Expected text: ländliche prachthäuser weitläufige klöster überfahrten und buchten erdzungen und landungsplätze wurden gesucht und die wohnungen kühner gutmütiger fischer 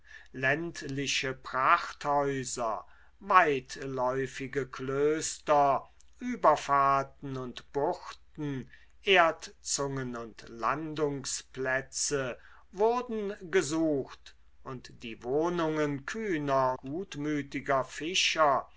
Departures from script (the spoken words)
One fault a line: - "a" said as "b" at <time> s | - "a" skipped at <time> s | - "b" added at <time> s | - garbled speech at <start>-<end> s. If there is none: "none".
none